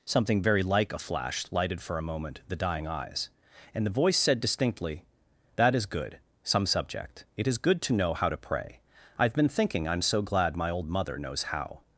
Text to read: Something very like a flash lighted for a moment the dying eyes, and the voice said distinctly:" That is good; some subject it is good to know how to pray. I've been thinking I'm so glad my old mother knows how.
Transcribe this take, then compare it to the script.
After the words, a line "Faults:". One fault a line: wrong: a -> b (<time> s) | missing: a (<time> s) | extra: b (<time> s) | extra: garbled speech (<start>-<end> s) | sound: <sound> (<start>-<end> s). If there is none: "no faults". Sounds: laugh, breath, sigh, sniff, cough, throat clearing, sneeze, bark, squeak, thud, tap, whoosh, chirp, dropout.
Something very like a flash lighted for a moment the dying eyes, and the voice said distinctly:" That is good; some subject it is good to know how to pray. I've been thinking I'm so glad my old mother knows how.
Faults:
no faults